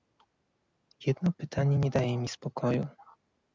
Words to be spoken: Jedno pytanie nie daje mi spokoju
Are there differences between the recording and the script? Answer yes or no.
no